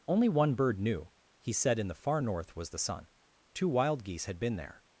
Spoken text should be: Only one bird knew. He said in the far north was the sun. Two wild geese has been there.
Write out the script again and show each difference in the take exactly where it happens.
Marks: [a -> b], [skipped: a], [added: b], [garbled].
Only one bird knew. He said in the far north was the sun. Two wild geese [has -> had] been there.